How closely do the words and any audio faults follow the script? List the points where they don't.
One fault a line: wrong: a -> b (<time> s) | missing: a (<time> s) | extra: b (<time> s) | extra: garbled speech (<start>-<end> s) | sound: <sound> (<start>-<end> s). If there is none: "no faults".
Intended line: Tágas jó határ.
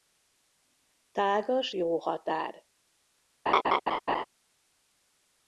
sound: laugh (3.5-4.2 s)